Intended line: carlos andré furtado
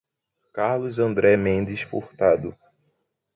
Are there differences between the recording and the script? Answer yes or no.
yes